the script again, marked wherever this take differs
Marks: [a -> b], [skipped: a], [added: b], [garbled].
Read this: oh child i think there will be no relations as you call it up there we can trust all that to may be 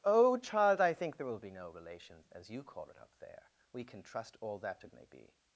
oh child i think there will be no relations as you call it up there we can trust all that to may be